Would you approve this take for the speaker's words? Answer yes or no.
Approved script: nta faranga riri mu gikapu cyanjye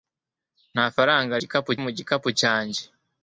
no